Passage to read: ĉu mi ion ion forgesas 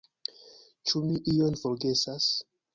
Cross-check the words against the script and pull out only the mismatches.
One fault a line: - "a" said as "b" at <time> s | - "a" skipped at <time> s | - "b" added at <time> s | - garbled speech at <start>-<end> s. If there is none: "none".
- "ion" skipped at 1.6 s